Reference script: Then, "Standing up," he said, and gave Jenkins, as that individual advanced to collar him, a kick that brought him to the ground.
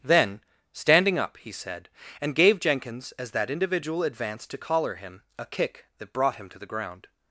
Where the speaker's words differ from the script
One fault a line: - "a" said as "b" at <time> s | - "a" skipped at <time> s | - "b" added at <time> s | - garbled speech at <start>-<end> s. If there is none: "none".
none